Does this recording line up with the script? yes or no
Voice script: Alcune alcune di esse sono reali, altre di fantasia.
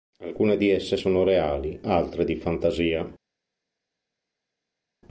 no